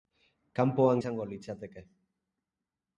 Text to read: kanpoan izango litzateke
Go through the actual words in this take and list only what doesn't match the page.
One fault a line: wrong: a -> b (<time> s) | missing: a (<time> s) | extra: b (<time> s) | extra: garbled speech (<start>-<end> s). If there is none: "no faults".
no faults